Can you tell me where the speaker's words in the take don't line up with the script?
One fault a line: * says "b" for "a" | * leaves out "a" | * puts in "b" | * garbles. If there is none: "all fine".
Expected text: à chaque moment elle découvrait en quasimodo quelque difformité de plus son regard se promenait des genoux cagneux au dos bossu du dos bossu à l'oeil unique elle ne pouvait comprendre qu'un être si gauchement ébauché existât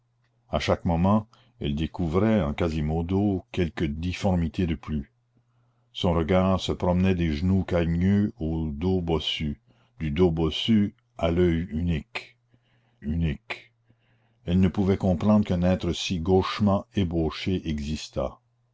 * puts in "unique"